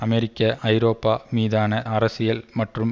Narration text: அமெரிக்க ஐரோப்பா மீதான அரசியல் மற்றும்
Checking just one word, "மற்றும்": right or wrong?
right